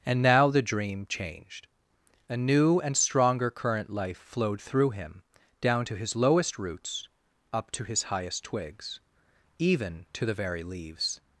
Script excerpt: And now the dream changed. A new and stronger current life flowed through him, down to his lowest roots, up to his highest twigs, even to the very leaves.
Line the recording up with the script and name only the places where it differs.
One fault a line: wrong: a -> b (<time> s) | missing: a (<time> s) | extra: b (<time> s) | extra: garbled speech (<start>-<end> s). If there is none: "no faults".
no faults